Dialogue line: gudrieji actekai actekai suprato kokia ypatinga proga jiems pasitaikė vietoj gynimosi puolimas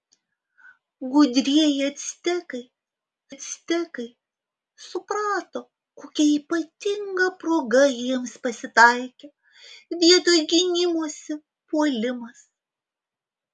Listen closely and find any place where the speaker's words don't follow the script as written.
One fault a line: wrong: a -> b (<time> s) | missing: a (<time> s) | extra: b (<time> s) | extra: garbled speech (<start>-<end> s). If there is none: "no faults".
no faults